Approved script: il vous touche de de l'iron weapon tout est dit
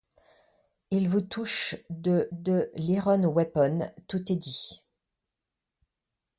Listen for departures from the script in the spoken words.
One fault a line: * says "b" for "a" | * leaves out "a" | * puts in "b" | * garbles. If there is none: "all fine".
all fine